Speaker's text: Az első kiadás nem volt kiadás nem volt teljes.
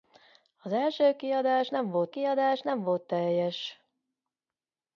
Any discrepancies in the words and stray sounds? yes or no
no